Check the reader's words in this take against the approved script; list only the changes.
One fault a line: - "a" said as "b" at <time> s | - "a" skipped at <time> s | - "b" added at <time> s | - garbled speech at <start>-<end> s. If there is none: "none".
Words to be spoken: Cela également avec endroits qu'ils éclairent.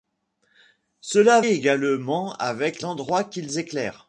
none